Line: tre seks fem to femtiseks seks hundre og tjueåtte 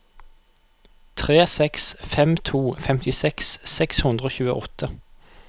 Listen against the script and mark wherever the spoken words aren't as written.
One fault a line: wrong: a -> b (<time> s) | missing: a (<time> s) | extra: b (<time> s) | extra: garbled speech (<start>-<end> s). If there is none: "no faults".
no faults